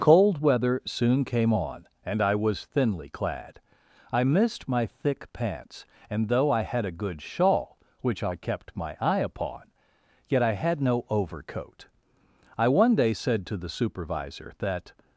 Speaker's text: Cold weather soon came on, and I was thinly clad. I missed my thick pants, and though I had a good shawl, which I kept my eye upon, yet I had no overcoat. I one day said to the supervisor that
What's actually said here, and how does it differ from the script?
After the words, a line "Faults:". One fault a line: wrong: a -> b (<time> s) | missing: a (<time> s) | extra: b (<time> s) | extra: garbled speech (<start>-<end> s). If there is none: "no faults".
Cold weather soon came on, and I was thinly clad. I missed my thick pants, and though I had a good shawl, which I kept my eye upon, yet I had no overcoat. I one day said to the supervisor that
Faults:
no faults